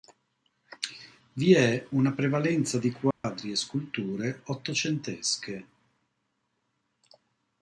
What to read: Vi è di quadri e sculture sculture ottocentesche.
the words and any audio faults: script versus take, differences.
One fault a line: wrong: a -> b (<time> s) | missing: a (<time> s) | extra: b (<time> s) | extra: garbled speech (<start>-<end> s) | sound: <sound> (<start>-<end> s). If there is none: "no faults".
extra: una prevalenza (1.9 s)
sound: dropout (3.1-3.2 s)
missing: sculture (4.4 s)